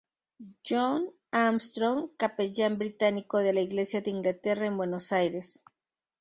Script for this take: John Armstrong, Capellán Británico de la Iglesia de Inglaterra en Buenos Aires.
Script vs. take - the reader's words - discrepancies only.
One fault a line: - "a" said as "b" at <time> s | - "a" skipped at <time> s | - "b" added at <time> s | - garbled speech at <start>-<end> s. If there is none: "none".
none